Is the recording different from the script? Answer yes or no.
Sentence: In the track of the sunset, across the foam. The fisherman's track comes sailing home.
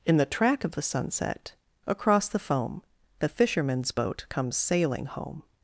yes